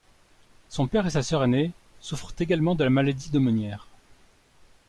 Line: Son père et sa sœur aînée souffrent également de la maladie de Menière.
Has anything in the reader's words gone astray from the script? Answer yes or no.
no